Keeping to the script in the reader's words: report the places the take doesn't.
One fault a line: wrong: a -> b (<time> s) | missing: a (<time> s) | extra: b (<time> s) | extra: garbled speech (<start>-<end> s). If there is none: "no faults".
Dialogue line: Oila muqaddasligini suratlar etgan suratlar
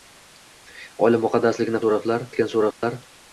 no faults